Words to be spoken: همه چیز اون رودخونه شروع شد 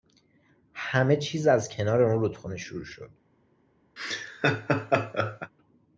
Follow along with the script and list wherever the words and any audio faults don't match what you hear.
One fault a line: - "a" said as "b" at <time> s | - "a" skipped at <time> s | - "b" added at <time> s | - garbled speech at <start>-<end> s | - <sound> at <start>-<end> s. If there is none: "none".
- "از کنار" added at 1.5 s
- laugh at 4.0-5.5 s